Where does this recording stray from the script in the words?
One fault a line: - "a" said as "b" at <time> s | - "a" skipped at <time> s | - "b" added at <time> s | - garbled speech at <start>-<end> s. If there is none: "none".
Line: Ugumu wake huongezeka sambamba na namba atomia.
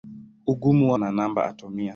- "wake huongezeka sambamba" skipped at 0.9 s